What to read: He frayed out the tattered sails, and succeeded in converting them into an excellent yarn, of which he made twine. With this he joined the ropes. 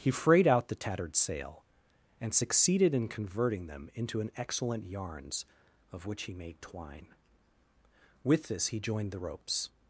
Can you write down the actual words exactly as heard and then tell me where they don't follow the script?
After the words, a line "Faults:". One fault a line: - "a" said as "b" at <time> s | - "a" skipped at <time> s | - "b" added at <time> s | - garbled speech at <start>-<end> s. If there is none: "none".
He frayed out the tattered sail, and succeeded in converting them into an excellent yarns, of which he made twine. With this he joined the ropes.
Faults:
- "sails" said as "sail" at 1.1 s
- "yarn" said as "yarns" at 4.9 s